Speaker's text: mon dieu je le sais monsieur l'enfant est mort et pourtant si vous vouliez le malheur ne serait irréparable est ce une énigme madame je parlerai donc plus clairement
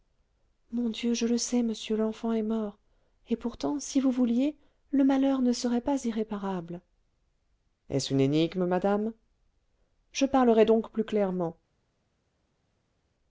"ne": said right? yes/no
yes